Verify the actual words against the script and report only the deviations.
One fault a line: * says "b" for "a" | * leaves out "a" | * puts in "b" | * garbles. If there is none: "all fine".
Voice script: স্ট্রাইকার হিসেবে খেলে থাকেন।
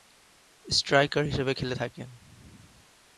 all fine